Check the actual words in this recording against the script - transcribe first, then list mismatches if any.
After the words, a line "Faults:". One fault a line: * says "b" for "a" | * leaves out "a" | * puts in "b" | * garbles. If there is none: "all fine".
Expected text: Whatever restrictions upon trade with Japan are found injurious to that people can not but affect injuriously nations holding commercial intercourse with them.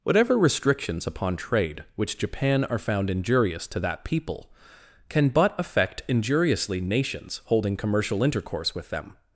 Whatever restrictions upon trade which Japan are found injurious to that people can but affect injuriously nations holding commercial intercourse with them.
Faults:
* says "which" for "with"
* leaves out "not"